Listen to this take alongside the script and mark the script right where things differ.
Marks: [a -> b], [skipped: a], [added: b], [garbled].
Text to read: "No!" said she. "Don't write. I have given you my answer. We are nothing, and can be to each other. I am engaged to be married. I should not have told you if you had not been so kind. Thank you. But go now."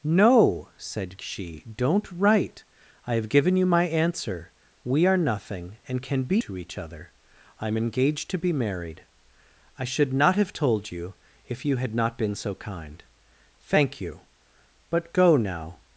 "No!" said she. "Don't write. I have given you my answer. We are nothing, and can be to each other. I am engaged to be married. I should not have told you if you had not been so kind. Thank you. But go now."